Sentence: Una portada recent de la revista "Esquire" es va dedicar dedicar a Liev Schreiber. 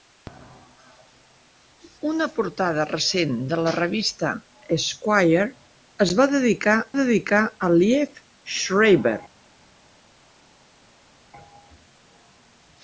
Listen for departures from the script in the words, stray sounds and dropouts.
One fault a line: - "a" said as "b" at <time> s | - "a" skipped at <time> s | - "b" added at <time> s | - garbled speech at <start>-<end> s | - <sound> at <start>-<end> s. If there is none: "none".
none